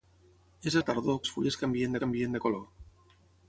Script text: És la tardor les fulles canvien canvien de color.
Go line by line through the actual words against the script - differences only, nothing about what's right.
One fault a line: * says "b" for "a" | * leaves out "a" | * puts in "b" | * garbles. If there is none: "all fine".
all fine